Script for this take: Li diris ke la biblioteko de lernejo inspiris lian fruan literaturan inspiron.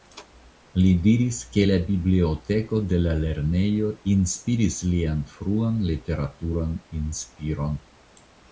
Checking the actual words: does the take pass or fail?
fail